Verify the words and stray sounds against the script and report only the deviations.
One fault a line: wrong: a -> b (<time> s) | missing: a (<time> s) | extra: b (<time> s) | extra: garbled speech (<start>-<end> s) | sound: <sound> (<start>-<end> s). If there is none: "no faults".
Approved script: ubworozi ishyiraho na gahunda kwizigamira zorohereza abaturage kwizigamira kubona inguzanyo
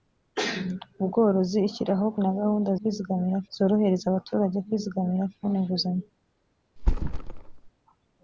sound: thud (6.8-7.7 s)